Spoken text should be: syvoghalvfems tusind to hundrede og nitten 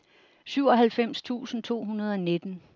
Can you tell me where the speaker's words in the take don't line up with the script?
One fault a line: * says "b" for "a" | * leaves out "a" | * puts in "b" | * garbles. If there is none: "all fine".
all fine